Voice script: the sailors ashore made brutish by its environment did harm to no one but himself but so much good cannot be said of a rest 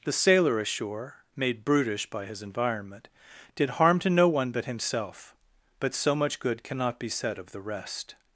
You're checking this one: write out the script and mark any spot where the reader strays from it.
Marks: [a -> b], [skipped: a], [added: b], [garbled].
the [sailors -> sailor] ashore made brutish by [its -> his] environment did harm to no one but himself but so much good cannot be said of [a -> the] rest